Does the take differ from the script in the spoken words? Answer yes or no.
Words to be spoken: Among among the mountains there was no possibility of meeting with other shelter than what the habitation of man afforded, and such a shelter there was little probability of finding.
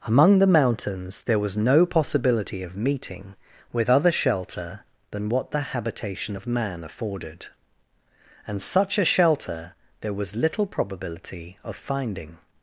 yes